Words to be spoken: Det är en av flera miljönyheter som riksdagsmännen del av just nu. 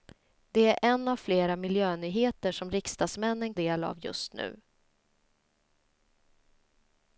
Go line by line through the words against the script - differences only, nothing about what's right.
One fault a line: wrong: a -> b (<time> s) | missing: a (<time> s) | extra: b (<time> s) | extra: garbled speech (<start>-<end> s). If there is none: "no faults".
no faults